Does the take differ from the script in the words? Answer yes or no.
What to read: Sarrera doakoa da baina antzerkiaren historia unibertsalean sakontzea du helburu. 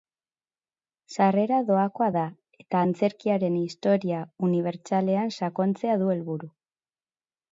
yes